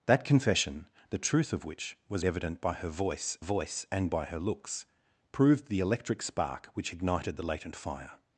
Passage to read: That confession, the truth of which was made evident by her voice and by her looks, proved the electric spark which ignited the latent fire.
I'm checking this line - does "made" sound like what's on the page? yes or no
no